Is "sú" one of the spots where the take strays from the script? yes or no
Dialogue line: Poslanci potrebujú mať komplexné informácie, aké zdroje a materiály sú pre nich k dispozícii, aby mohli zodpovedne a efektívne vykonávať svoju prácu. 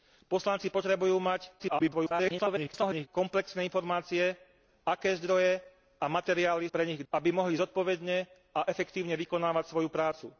yes